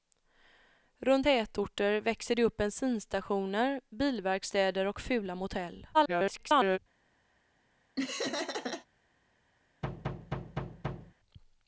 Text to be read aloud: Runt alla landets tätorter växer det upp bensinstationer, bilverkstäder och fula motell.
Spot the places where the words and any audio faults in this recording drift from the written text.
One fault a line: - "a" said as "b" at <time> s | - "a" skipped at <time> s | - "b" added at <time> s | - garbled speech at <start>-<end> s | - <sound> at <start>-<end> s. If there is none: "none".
- "alla landets" skipped at 1.3 s
- garbled speech at 5.9-6.8 s
- laugh at 8.0-8.9 s
- thud at 9.8-11.1 s